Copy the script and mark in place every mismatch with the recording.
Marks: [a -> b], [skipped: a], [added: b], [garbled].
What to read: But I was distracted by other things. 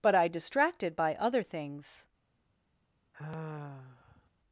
But I [skipped: was] distracted by other things.